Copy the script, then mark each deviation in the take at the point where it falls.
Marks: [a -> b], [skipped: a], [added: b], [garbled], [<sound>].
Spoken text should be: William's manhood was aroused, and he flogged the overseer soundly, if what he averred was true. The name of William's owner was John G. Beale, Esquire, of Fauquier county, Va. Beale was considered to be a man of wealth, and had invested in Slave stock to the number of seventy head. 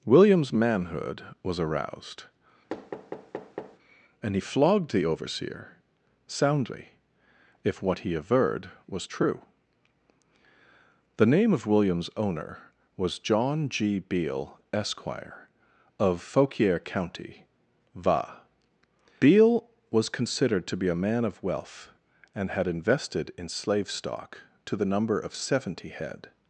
William's manhood was aroused, [thud] and he flogged the overseer soundly, if what he averred was true. The name of William's owner was John G. Beale, Esquire, of Fauquier county, Va. Beale was considered to be a man of wealth, and had invested in Slave stock to the number of seventy head.